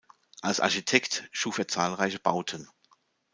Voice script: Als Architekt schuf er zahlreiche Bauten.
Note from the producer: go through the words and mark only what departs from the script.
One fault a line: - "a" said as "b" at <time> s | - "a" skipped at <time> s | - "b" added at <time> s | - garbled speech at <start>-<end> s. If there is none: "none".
none